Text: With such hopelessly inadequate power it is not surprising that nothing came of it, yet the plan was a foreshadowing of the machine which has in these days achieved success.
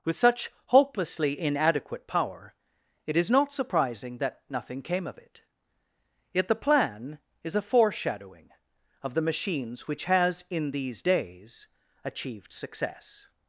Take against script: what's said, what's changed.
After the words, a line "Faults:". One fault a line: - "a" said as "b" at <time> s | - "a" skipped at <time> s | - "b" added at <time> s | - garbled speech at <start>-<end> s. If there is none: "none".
With such hopelessly inadequate power it is not surprising that nothing came of it, yet the plan is a foreshadowing of the machines which has in these days achieved success.
Faults:
- "was" said as "is" at 7.4 s
- "machine" said as "machines" at 9.2 s